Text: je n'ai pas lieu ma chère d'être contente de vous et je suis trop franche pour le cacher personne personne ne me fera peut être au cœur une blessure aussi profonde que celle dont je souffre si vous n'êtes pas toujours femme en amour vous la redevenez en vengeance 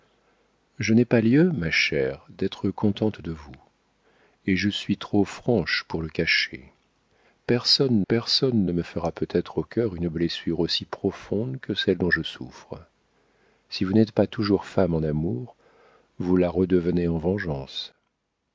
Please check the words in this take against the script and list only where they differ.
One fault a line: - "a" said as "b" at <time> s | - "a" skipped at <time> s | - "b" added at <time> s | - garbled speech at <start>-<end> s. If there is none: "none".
none